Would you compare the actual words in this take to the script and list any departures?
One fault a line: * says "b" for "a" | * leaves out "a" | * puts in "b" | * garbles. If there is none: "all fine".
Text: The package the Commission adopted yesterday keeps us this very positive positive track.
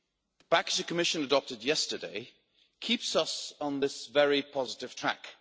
* puts in "on"
* leaves out "positive"